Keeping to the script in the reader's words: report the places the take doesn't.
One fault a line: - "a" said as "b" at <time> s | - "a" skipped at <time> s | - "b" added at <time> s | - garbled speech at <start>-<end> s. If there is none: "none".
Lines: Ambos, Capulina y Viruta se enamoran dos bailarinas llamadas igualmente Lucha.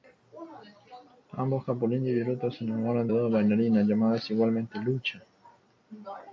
none